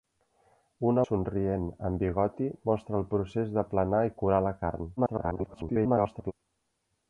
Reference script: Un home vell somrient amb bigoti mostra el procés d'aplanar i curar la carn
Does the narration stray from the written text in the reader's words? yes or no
yes